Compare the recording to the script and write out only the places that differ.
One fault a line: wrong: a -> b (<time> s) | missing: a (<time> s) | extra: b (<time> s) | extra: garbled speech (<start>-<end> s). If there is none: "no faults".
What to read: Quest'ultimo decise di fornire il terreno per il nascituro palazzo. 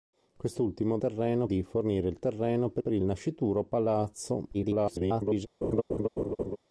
wrong: decise -> terreno (1.0 s)
extra: per (2.8 s)
extra: garbled speech (4.5-5.5 s)